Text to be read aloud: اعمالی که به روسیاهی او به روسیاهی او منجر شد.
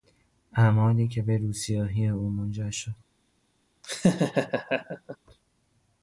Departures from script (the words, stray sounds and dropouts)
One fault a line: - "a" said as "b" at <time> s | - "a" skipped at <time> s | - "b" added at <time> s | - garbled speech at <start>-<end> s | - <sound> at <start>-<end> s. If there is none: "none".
- "به روسیاهی او" skipped at 2.3 s
- laugh at 3.8-5.2 s